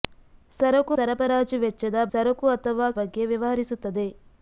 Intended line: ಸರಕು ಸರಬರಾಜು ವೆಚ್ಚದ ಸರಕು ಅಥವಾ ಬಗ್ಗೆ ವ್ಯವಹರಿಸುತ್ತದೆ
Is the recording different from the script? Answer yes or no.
no